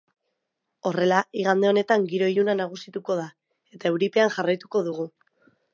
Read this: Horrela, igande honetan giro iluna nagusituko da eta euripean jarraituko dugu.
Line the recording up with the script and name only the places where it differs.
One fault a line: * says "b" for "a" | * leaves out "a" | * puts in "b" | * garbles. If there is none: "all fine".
all fine